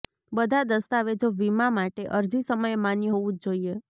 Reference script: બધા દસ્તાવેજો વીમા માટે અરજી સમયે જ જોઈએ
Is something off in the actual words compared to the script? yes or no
yes